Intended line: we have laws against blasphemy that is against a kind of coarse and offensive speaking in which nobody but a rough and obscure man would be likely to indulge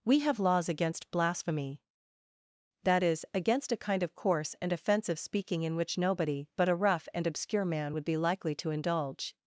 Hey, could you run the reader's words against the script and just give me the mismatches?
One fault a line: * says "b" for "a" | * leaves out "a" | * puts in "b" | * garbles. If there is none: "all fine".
all fine